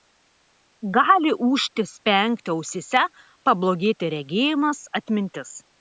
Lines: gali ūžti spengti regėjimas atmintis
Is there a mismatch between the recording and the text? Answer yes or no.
yes